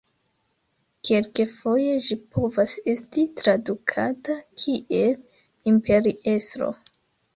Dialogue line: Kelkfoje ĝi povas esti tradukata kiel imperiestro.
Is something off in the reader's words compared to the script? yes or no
no